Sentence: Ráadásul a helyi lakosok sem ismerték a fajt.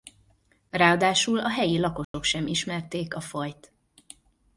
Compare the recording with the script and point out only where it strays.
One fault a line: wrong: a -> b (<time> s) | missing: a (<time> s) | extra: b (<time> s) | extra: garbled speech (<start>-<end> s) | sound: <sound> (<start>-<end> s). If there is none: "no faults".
sound: dropout (2.0-2.1 s)